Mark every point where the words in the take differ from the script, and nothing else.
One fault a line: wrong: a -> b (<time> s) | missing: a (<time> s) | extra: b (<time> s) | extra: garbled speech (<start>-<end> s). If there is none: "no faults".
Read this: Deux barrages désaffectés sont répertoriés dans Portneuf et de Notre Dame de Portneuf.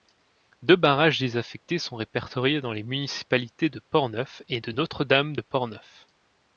extra: les municipalités de (2.7 s)